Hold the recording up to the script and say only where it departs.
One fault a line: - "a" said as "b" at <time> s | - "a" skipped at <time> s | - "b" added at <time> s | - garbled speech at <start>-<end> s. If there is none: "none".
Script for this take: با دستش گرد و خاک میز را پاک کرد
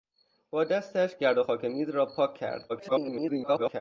- garbled speech at 2.7-3.8 s